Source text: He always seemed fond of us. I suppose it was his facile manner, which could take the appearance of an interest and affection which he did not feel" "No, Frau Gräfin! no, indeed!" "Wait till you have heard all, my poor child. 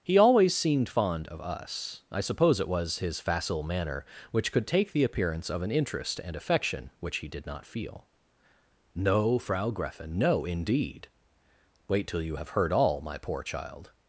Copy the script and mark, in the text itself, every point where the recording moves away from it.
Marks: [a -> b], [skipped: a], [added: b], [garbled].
He always seemed fond of us. I suppose it was his facile manner, which could take the appearance of an interest and affection which he did not feel" "No, Frau Gräfin! no, indeed!" "Wait till you have heard all, my poor child.